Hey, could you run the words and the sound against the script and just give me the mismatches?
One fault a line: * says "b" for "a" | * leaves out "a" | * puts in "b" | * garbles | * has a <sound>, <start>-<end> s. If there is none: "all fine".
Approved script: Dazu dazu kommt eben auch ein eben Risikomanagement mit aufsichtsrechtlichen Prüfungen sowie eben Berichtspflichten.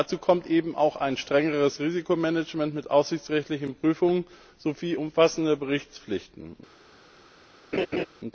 * leaves out "dazu"
* says "strengeres" for "eben"
* says "umfassende" for "eben"
* has a laugh, 7.7-8.1 s